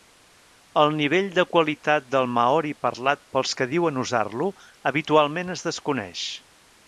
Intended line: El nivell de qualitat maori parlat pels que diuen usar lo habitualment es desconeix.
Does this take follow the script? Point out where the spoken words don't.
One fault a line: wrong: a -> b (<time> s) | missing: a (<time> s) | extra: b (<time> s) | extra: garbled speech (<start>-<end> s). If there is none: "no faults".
extra: del (2.1 s)